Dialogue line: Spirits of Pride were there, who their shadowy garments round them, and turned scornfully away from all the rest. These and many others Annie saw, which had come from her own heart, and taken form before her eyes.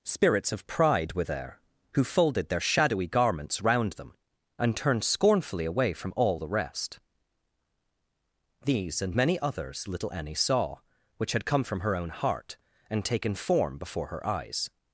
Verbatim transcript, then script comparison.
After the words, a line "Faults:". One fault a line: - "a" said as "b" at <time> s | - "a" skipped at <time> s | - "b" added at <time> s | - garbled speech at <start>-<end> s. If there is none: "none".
Spirits of Pride were there, who folded their shadowy garments round them, and turned scornfully away from all the rest. These and many others little Annie saw, which had come from her own heart, and taken form before her eyes.
Faults:
- "folded" added at 2.0 s
- "little" added at 9.9 s